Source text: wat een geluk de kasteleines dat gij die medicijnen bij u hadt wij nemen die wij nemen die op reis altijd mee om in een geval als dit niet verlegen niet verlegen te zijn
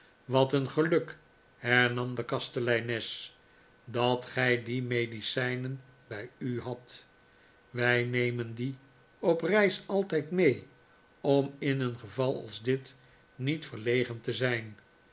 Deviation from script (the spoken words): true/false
true